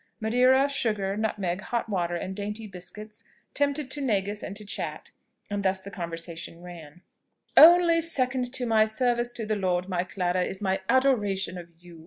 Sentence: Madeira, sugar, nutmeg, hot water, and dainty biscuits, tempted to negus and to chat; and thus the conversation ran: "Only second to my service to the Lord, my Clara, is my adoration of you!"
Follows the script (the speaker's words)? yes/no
yes